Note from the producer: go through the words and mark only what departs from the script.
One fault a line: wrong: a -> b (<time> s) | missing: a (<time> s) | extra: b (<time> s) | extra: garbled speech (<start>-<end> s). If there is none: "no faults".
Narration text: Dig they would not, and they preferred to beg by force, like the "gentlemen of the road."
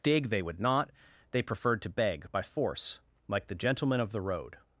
missing: and (0.9 s)